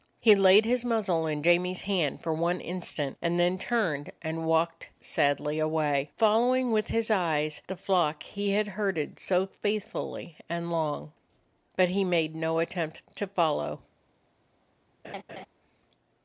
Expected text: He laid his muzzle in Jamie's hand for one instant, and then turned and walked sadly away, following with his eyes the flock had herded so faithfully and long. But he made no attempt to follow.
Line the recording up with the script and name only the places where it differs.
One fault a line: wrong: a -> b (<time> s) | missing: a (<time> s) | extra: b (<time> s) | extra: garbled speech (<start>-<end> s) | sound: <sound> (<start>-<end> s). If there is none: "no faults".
extra: he (8.2 s)
sound: laugh (15.0-15.5 s)